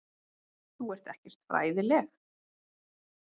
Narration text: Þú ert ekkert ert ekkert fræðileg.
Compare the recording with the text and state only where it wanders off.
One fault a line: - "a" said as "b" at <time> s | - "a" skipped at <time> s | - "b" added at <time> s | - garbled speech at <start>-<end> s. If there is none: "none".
- "ert ekkert" skipped at 1.4 s